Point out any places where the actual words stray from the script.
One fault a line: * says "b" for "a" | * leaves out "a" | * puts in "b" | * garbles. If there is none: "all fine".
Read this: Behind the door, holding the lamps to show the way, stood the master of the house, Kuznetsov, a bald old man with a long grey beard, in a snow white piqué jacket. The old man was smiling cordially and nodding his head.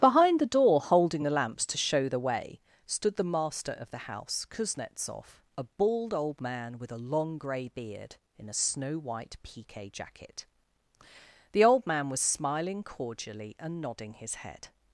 all fine